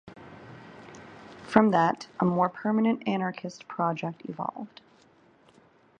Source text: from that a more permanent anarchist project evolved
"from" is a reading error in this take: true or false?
false